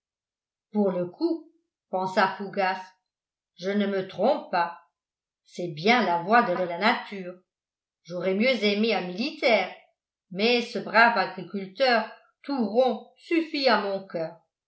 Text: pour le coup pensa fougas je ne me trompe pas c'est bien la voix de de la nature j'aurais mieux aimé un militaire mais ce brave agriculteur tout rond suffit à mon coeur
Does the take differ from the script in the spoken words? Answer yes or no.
no